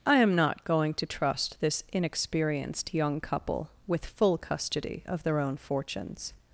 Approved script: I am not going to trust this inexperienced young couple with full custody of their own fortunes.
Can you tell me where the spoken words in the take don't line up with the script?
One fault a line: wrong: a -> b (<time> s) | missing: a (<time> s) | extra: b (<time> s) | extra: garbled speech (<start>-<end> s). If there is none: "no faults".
no faults